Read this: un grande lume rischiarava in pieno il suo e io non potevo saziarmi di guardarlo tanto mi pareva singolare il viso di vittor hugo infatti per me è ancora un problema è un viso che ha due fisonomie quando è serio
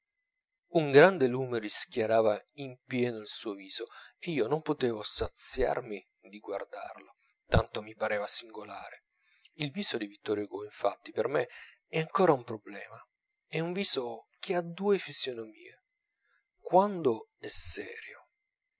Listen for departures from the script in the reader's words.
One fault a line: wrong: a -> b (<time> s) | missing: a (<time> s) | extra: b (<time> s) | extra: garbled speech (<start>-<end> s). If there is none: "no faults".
extra: viso (3.5 s)